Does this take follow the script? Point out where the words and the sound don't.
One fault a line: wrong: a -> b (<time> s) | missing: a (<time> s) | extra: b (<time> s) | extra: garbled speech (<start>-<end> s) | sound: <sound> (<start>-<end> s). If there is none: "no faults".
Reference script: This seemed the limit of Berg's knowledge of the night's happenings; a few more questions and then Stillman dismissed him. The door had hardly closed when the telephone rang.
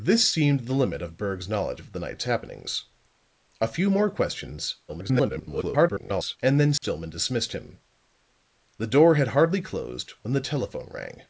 extra: garbled speech (4.9-6.4 s)
sound: dropout (6.8-6.8 s)